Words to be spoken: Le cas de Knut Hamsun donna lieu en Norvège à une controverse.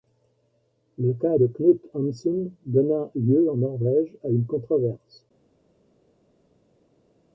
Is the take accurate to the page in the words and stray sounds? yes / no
yes